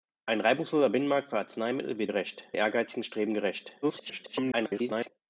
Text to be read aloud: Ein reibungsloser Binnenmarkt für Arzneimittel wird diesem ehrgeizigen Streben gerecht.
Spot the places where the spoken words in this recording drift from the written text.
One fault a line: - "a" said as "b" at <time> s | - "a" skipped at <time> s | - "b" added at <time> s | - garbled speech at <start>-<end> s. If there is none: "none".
- "diesem" said as "gerecht" at 2.0 s
- garbled speech at 3.8-5.1 s